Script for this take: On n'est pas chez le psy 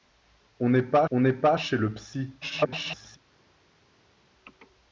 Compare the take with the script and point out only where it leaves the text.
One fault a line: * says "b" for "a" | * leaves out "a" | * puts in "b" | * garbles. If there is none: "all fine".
* puts in "on n'est pas"
* garbles